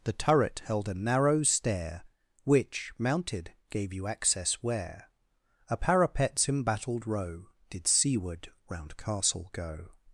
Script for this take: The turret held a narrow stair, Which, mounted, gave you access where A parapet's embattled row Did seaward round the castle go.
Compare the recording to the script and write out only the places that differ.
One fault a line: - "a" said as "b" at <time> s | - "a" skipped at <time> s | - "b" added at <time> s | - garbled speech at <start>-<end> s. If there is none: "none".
- "the" skipped at 9.0 s